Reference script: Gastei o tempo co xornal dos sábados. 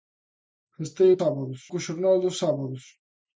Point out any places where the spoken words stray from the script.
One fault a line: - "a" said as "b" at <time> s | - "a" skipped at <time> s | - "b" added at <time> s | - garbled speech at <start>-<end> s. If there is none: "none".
- "tempo" said as "sábados" at 1.2 s